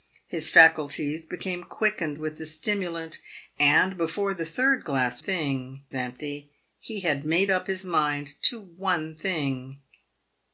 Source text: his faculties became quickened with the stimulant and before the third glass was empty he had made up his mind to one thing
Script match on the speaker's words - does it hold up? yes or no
no